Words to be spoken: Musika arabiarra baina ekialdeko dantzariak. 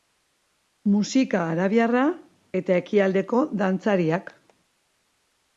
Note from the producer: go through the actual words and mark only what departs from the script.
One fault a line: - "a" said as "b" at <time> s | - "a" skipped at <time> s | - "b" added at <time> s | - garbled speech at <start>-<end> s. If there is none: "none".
- "baina" said as "eta" at 2.6 s